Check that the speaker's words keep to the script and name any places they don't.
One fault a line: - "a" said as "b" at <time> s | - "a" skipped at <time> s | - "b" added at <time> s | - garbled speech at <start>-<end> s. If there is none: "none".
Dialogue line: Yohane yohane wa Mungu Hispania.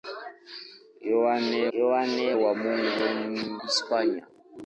none